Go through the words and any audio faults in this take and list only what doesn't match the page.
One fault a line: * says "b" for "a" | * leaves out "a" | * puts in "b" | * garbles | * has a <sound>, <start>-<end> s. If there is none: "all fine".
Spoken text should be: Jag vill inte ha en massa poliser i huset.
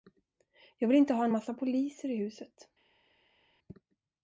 all fine